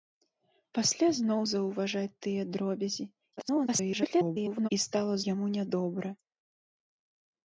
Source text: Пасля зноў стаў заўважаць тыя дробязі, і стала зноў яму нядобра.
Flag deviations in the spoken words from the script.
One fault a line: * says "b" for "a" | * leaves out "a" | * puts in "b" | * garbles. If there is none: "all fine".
* leaves out "стаў"
* garbles
* leaves out "зноў"